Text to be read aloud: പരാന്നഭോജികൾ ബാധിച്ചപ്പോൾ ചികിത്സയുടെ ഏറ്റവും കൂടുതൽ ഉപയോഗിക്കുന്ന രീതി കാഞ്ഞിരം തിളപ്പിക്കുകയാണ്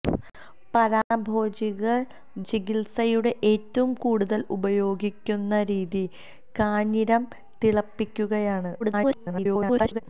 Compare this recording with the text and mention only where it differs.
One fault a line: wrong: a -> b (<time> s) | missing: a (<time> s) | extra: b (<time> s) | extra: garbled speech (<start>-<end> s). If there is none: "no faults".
missing: ബാധിച്ചപ്പോൾ (2.0 s)
extra: garbled speech (8.8-10.0 s)